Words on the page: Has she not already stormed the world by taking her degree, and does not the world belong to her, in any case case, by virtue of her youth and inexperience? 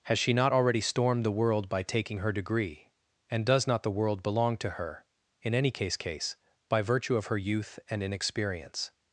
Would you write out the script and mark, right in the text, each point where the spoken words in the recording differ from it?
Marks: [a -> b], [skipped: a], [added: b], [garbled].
Has she not already stormed the world by taking her degree, and does not the world belong to her, in any case case, by virtue of her youth and inexperience?